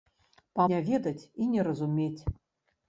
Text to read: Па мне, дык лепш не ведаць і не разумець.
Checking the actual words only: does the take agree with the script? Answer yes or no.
no